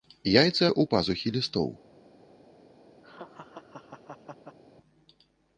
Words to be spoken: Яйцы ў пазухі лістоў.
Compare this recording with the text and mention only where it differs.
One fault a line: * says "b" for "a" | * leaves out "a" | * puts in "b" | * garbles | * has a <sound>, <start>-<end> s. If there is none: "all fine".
* has a laugh, 3.0-4.6 s